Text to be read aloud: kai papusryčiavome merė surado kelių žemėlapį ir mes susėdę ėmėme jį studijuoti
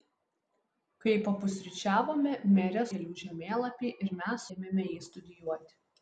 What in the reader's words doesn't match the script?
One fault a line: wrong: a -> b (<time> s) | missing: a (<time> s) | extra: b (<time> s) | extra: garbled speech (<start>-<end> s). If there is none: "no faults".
missing: surado (2.8 s)
missing: susėdę (4.5 s)